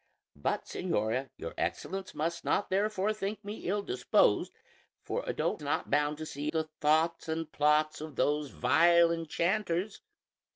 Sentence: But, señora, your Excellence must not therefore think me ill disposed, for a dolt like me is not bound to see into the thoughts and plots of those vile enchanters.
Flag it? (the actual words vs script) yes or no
yes